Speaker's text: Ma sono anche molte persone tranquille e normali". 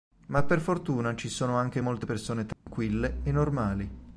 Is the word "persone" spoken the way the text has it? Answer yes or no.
yes